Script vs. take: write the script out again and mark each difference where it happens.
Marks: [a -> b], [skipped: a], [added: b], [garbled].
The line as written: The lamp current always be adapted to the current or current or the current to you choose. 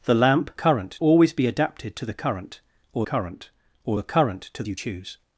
The lamp current always be adapted to the current or current or the current to you choose.